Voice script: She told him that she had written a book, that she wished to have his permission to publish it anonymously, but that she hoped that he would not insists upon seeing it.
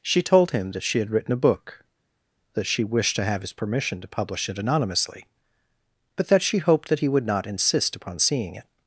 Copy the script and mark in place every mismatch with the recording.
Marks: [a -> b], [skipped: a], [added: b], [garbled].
She told him that she had written a book, that she wished to have his permission to publish it anonymously, but that she hoped that he would not [insists -> insist] upon seeing it.